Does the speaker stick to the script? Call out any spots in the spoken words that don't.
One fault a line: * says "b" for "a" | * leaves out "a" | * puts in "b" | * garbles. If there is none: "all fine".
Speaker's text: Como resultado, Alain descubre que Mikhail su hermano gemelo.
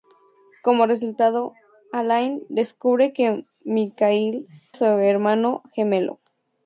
all fine